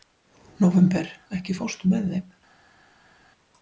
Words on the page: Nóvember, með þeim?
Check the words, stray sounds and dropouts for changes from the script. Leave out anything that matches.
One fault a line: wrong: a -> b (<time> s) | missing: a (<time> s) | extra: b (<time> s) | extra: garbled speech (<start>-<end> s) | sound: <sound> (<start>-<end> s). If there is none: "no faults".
extra: ekki fórstu (1.4 s)